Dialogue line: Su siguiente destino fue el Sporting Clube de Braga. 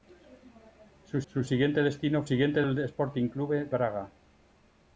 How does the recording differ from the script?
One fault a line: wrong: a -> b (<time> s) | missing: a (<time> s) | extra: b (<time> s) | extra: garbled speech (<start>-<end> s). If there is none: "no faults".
extra: su (1.3 s)
wrong: fue -> siguiente (2.2 s)
missing: de (3.7 s)